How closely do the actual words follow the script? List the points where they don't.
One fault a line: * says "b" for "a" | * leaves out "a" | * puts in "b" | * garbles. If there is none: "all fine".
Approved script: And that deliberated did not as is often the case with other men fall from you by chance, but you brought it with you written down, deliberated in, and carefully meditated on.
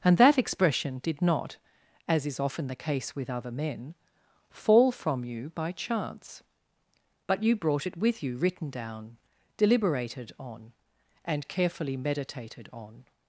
* says "expression" for "deliberated"
* says "on" for "in"